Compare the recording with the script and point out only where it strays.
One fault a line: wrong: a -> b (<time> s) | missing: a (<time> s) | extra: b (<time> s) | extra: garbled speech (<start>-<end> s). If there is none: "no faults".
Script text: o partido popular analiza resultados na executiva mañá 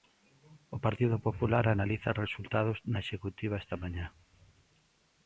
extra: esta (3.6 s)